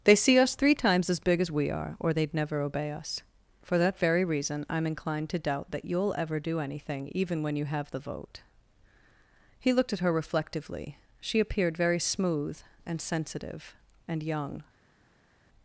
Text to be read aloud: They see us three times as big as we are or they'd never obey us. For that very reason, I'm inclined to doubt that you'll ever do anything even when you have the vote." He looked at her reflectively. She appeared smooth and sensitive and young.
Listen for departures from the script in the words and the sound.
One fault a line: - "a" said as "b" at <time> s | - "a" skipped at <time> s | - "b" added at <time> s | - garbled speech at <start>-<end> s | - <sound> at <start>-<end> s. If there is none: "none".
- "very" added at 11.8 s